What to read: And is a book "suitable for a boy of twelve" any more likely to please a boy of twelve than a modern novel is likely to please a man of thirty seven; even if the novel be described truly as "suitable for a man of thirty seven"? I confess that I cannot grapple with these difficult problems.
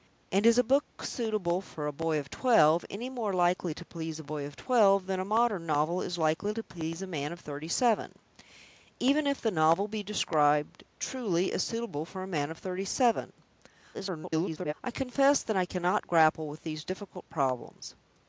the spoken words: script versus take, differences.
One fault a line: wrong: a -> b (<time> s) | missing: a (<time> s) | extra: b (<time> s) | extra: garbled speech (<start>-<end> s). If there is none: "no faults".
extra: garbled speech (13.9-14.7 s)